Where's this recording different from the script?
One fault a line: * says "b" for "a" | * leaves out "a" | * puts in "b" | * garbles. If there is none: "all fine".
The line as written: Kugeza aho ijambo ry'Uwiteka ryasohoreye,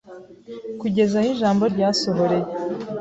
* leaves out "ry'Uwiteka"